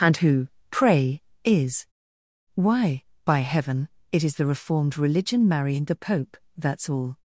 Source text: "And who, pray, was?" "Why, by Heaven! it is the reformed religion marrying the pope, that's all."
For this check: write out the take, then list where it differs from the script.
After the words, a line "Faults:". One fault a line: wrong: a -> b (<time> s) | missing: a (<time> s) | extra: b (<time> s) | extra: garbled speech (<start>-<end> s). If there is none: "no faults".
"And who, pray, is?" "Why, by Heaven! it is the reformed religion marrying the pope, that's all."
Faults:
wrong: was -> is (1.4 s)